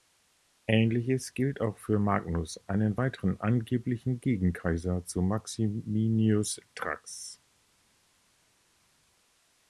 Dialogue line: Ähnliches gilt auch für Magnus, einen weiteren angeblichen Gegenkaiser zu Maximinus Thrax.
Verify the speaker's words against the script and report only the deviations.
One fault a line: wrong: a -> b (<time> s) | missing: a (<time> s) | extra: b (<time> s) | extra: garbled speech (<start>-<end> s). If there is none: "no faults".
no faults